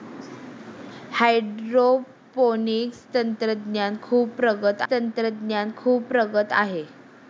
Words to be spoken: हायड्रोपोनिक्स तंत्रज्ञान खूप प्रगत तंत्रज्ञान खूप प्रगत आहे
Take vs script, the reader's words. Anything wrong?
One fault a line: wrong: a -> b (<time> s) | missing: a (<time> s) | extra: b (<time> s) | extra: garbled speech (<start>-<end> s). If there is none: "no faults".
no faults